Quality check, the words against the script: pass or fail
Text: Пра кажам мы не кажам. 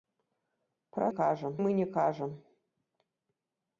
pass